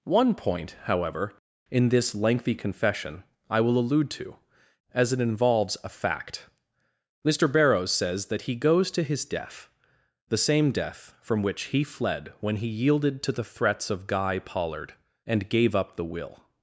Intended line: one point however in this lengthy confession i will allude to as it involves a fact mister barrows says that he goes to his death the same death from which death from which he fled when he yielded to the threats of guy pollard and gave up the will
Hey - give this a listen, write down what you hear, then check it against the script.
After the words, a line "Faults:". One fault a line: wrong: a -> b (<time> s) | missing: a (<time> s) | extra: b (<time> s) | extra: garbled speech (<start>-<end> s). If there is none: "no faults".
one point however in this lengthy confession i will allude to as it involves a fact mister barrows says that he goes to his death the same death from which he fled when he yielded to the threats of guy pollard and gave up the will
Faults:
missing: death from which (11.6 s)